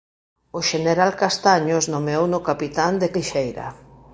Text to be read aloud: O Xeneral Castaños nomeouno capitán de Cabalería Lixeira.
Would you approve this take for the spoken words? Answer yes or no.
no